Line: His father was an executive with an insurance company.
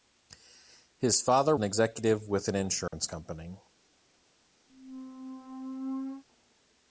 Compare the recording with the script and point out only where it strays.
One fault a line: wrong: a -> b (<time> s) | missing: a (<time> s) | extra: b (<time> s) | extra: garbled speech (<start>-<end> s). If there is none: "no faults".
missing: was (1.6 s)